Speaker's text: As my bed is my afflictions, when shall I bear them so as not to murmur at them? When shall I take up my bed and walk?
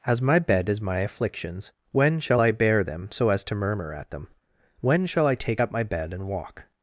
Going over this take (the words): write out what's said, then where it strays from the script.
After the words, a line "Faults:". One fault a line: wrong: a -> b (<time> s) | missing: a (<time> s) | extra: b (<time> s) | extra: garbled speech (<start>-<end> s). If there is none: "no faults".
As my bed is my afflictions, when shall I bear them so as to murmur at them? When shall I take up my bed and walk?
Faults:
missing: not (3.4 s)